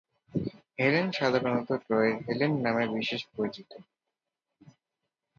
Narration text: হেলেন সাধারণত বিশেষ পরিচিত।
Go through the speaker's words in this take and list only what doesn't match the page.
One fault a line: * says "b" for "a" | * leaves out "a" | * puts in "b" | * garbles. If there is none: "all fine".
* puts in "ট্রয়ের হেলেন নামে"